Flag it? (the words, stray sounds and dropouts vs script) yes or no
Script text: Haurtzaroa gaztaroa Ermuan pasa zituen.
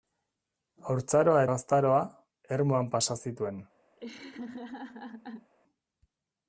yes